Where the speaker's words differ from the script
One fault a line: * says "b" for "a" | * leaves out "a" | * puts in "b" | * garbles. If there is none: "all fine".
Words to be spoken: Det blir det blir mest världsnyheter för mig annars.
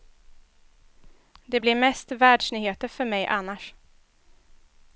* leaves out "det blir"